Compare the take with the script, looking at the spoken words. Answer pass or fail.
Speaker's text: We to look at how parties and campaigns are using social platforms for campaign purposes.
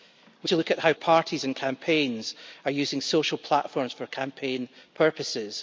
pass